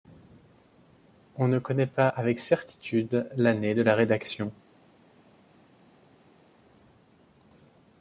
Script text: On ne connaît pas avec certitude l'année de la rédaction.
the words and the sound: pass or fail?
pass